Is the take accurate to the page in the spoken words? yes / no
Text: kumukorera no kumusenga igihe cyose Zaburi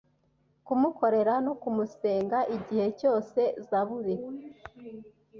yes